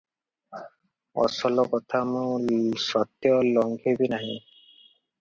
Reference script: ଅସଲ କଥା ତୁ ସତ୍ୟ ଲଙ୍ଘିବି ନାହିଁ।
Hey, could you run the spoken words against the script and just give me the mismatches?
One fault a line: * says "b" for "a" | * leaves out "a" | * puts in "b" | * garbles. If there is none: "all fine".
* says "ମୁଁ" for "ତୁ"